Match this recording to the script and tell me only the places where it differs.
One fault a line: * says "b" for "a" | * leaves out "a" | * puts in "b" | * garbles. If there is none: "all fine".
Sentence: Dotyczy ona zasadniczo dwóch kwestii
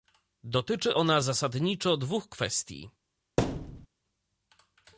all fine